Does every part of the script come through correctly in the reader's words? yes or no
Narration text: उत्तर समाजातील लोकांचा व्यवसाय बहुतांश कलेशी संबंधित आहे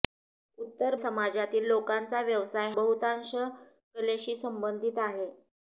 yes